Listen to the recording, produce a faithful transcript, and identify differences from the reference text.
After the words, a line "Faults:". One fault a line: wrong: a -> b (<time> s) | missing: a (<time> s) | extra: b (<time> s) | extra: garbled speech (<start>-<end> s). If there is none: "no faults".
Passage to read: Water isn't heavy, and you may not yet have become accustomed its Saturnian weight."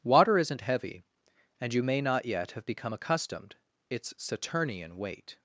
Water isn't heavy, and you may not yet have become accustomed its Saturnian weight."
Faults:
no faults